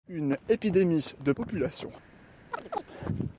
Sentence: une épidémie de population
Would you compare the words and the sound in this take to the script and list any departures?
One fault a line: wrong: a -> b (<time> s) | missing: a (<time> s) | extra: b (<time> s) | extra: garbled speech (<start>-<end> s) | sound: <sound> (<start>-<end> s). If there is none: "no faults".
sound: chirp (2.5-2.8 s)